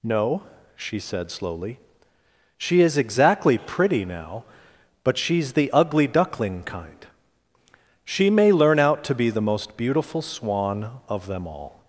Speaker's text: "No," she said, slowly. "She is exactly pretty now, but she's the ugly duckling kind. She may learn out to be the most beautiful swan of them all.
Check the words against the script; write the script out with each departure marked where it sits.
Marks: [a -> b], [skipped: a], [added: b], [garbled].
"No," she said, slowly. "She is exactly pretty now, but she's the ugly duckling kind. She may learn out to be the most beautiful swan of them all.